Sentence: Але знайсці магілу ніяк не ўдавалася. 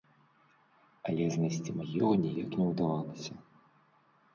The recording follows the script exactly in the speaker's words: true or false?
true